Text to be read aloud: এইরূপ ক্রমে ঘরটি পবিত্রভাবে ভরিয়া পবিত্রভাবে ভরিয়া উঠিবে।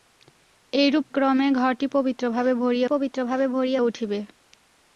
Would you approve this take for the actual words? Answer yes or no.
yes